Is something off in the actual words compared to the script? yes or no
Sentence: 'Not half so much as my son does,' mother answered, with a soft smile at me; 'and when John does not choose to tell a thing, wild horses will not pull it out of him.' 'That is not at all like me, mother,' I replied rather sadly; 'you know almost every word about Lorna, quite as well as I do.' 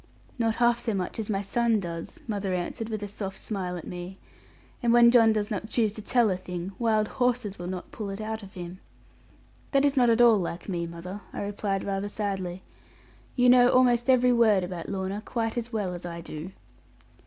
no